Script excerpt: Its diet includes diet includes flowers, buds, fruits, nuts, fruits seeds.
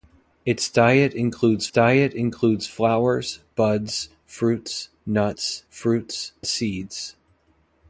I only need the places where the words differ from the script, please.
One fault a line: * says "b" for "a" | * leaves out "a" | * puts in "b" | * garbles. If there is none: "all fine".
all fine